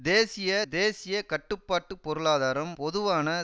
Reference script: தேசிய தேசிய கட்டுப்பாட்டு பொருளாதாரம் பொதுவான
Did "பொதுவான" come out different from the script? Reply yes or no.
no